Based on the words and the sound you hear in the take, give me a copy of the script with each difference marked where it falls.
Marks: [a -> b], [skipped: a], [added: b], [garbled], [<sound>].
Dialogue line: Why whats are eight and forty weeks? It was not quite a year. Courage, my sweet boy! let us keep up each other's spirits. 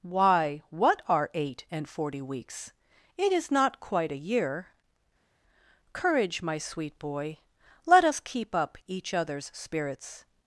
Why [whats -> what] are eight and forty weeks? It [was -> is] not quite a year. Courage, my sweet boy! let us keep up each other's spirits.